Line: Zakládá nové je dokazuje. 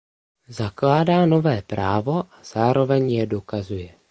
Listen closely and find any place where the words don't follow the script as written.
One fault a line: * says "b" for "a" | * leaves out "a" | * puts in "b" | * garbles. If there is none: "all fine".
* puts in "právo a zároveň"